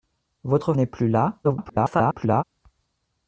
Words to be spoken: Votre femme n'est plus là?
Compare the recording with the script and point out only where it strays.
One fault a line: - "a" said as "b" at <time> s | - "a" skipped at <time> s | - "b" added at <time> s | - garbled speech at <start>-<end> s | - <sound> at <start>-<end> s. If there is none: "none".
- "femme" skipped at 0.7 s
- garbled speech at 1.4-2.4 s